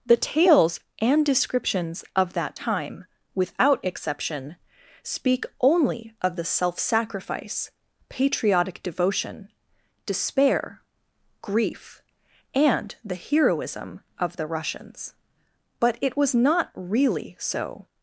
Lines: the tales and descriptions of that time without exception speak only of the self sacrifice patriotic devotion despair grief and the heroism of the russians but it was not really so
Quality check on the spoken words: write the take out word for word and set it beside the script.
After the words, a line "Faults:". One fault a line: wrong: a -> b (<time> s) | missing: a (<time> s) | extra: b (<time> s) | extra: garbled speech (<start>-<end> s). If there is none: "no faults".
the tales and descriptions of that time without exception speak only of the self sacrifice patriotic devotion despair grief and the heroism of the russians but it was not really so
Faults:
no faults